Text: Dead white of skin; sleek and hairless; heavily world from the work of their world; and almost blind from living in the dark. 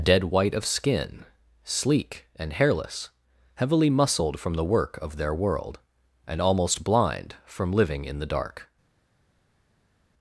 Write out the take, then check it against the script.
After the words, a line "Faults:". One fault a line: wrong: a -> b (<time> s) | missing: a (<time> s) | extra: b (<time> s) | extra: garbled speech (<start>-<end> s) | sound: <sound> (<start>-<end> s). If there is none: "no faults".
Dead white of skin; sleek and hairless; heavily muscled from the work of their world; and almost blind from living in the dark.
Faults:
wrong: world -> muscled (3.9 s)